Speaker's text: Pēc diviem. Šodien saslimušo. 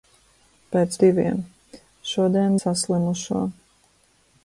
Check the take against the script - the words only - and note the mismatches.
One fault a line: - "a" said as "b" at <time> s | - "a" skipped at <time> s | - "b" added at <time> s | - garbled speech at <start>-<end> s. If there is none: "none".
none